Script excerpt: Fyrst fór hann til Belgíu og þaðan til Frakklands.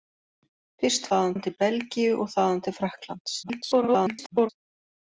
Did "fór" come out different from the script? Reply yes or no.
yes